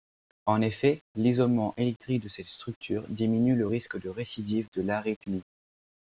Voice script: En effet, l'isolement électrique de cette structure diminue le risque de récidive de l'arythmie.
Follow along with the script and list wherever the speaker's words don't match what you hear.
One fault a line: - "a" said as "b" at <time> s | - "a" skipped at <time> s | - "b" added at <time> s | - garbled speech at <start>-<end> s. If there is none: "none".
none